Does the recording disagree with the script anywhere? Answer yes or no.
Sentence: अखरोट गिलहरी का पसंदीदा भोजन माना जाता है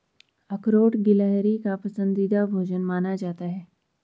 no